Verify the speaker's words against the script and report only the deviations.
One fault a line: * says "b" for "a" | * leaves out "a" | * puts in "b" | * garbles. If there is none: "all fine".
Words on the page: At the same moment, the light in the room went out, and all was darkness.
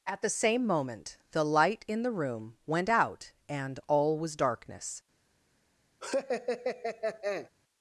all fine